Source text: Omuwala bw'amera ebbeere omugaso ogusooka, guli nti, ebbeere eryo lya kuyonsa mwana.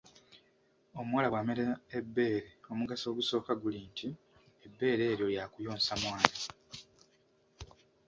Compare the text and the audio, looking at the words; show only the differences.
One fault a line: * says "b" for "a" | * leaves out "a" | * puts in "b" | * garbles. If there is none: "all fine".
all fine